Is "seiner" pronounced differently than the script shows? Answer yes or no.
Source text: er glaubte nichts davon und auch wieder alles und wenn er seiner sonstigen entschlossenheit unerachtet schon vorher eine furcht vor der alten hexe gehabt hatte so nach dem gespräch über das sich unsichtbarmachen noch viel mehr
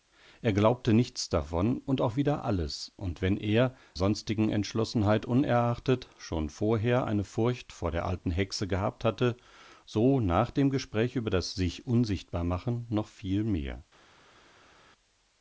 yes